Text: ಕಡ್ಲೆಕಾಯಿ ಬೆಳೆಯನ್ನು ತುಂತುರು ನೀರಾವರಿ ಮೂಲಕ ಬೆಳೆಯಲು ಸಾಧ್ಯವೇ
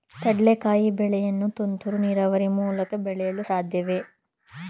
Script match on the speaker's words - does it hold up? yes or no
yes